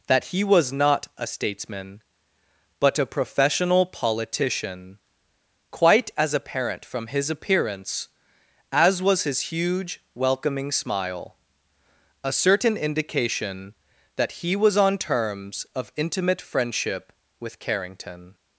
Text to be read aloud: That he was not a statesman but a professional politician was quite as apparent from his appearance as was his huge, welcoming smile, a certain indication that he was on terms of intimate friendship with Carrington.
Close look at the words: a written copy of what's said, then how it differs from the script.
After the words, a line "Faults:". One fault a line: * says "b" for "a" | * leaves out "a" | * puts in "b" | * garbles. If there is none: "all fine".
That he was not a statesman but a professional politician quite as apparent from his appearance as was his huge, welcoming smile, a certain indication that he was on terms of intimate friendship with Carrington.
Faults:
* leaves out "was"